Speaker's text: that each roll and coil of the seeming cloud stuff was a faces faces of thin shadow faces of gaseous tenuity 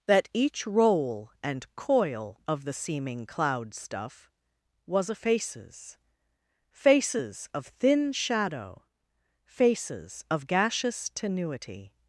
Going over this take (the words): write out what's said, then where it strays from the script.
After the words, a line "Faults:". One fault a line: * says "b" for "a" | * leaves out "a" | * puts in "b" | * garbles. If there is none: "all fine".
that each roll and coil of the seeming cloud stuff was a faces faces of thin shadow faces of gaseous tenuity
Faults:
all fine